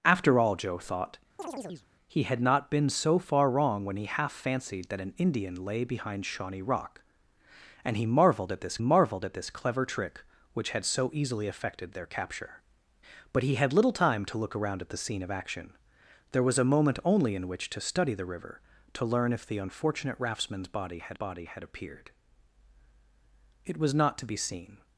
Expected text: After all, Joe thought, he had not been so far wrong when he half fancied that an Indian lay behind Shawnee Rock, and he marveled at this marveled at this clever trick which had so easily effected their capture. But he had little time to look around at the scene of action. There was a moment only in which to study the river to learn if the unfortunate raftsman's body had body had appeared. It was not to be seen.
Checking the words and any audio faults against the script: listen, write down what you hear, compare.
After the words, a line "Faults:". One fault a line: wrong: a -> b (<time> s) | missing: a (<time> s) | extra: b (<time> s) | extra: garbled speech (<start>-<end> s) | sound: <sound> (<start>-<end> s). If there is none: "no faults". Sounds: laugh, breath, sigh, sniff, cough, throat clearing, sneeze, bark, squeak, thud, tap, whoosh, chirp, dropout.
After all, Joe thought, he had not been so far wrong when he half fancied that an Indian lay behind Shawnee Rock, and he marveled at this marveled at this clever trick which had so easily effected their capture. But he had little time to look around at the scene of action. There was a moment only in which to study the river to learn if the unfortunate raftsman's body had body had appeared. It was not to be seen.
Faults:
sound: chirp (1.4-1.9 s)